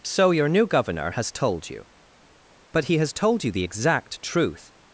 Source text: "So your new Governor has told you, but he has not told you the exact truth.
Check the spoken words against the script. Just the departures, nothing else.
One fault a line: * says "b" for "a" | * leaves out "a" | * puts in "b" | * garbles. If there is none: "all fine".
* leaves out "not"